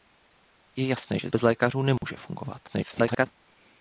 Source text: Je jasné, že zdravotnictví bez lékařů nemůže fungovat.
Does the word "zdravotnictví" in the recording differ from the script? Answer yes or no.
yes